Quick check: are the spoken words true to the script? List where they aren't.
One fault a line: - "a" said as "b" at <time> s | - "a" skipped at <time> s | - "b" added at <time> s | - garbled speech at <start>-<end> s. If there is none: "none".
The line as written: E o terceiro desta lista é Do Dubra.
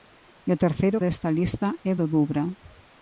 none